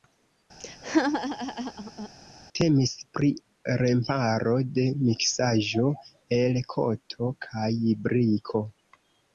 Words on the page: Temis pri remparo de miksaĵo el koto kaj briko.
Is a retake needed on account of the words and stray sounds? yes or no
yes